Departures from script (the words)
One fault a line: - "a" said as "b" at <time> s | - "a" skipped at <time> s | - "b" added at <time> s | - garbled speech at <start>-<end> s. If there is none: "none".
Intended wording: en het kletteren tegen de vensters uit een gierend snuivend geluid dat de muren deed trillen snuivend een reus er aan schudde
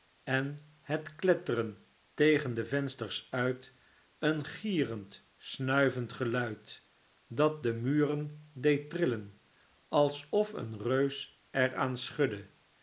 - "snuivend" said as "alsof" at 9.9 s